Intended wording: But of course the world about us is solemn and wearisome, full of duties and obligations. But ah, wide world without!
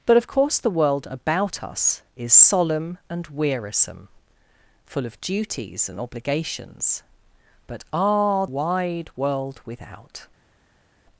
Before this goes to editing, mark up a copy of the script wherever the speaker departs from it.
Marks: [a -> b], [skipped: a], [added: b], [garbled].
But of course the world about us is solemn and wearisome, full of duties and obligations. But ah, wide world without!